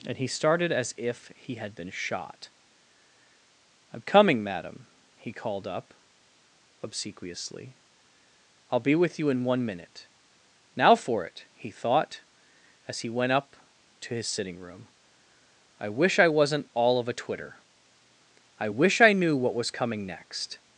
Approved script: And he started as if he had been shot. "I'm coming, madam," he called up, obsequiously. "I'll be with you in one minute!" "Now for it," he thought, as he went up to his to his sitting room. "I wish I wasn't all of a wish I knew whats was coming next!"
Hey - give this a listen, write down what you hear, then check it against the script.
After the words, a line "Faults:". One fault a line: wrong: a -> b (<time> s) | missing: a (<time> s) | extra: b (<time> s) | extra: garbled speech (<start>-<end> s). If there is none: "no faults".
And he started as if he had been shot. "I'm coming, madam," he called up, obsequiously. "I'll be with you in one minute!" "Now for it," he thought, as he went up to his sitting room. "I wish I wasn't all of a twitter. I wish I knew what was coming next!"
Faults:
missing: to his (14.3 s)
extra: twitter I (17.1 s)
wrong: whats -> what (19.3 s)